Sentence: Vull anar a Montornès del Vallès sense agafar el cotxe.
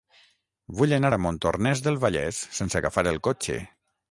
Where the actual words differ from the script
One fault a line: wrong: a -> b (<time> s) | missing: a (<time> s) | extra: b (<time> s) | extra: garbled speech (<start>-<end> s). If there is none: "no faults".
no faults